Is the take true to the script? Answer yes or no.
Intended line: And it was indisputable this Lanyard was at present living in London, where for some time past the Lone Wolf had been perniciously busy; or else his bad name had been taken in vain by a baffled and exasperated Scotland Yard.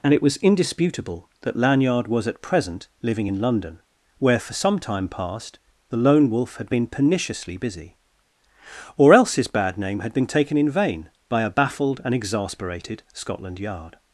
no